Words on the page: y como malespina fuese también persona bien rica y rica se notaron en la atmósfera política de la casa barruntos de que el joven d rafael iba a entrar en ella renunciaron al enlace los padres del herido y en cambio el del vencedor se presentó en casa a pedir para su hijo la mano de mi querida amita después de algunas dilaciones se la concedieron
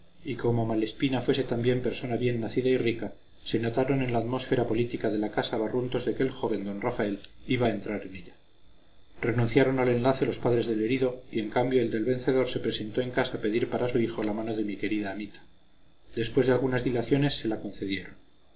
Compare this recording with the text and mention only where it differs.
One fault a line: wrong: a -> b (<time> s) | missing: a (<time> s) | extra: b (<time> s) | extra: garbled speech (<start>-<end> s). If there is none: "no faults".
wrong: rica -> nacida (2.4 s)